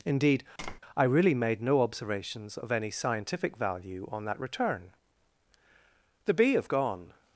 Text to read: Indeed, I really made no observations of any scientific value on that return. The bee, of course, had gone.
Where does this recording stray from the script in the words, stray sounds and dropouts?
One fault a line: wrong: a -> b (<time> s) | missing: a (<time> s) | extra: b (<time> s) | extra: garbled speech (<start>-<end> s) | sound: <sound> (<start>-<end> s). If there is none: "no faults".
sound: tap (0.6-0.8 s)
missing: course had (6.7 s)